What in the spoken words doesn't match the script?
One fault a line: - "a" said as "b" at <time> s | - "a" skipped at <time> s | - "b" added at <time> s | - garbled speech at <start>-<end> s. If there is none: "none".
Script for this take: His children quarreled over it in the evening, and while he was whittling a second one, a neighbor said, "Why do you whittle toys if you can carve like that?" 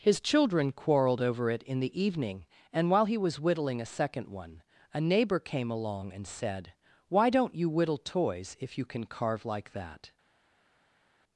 - "came along and" added at 5.4 s
- "do" said as "don't" at 7.3 s